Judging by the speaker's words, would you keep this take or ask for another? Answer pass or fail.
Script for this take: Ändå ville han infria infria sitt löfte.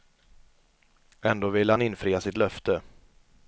fail